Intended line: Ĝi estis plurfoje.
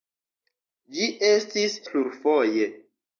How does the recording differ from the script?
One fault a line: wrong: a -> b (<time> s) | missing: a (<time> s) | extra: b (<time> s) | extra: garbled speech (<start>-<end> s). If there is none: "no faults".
no faults